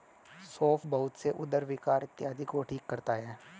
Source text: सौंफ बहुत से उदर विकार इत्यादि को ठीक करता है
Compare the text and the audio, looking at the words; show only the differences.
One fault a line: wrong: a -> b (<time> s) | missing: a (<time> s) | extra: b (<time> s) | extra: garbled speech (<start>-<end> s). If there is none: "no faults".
no faults